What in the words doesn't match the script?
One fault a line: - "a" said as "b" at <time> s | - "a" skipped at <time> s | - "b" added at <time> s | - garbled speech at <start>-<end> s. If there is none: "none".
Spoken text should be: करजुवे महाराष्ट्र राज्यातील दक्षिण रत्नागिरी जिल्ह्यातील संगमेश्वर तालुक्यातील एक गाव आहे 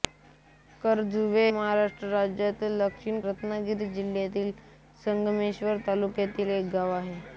none